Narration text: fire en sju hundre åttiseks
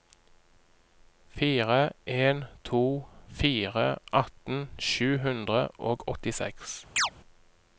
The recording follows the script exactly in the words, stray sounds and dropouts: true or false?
false